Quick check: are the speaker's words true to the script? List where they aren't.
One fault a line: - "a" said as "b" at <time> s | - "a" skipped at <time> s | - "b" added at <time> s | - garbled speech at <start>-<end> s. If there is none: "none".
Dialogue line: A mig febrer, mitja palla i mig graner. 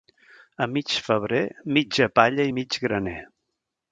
none